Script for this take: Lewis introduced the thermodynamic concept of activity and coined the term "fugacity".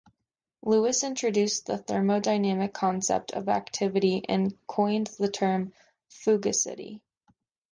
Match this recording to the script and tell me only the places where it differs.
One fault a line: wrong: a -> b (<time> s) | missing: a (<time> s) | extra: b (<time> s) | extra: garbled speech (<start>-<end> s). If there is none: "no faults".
no faults